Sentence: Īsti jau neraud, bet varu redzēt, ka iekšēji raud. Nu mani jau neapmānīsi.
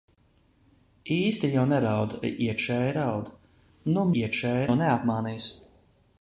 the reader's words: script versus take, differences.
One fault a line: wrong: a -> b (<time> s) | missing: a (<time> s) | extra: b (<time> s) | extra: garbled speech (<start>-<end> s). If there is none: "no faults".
missing: bet varu redzēt (2.1 s)
wrong: mani -> iekšēji (4.2 s)